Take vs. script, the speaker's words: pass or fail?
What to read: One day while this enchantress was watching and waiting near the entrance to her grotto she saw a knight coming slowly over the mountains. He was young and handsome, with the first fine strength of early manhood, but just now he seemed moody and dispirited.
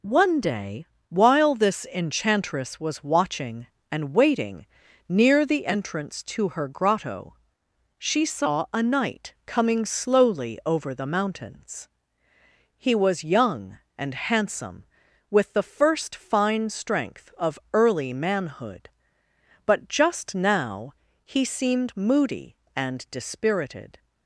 pass